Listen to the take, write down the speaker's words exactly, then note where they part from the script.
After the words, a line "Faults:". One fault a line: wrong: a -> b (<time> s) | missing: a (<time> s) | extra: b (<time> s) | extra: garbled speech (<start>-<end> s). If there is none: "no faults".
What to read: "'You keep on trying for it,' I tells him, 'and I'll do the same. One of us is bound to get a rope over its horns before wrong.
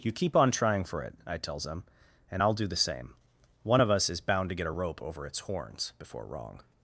"'You keep on trying for it,' I tells him, 'and I'll do the same. One of us is bound to get a rope over its horns before wrong.
Faults:
no faults